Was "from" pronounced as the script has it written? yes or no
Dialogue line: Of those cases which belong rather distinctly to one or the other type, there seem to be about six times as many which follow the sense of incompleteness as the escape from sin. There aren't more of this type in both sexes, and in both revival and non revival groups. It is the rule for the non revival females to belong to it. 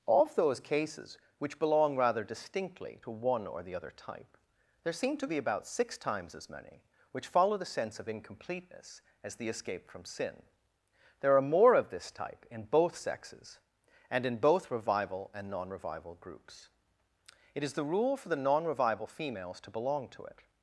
yes